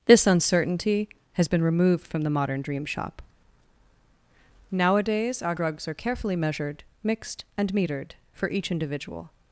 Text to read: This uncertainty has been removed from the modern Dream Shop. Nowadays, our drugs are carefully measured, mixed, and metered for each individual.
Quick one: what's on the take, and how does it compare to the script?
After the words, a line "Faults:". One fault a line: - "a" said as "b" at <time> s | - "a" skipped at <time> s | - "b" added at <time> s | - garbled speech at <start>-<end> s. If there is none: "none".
This uncertainty has been removed from the modern Dream Shop. Nowadays, our drugs are carefully measured, mixed, and metered for each individual.
Faults:
none